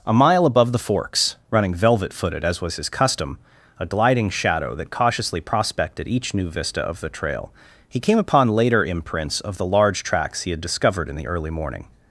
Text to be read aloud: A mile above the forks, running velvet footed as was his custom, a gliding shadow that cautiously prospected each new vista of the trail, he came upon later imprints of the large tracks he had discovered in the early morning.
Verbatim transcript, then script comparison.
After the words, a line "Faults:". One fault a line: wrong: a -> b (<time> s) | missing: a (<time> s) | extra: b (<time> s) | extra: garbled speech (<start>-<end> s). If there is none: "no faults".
A mile above the forks, running velvet footed as was his custom, a gliding shadow that cautiously prospected each new vista of the trail, he came upon later imprints of the large tracks he had discovered in the early morning.
Faults:
no faults